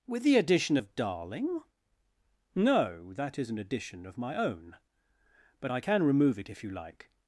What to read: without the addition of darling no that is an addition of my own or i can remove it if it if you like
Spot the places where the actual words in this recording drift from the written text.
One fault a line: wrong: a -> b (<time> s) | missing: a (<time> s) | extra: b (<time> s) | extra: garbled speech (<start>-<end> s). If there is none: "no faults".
wrong: without -> with (0.1 s)
wrong: or -> but (5.6 s)
missing: it if (6.6 s)